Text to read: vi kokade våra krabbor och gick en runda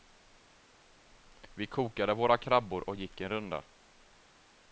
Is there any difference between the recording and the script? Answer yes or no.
no